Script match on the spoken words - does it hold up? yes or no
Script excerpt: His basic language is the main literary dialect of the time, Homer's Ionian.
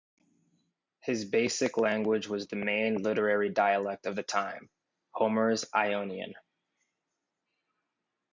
no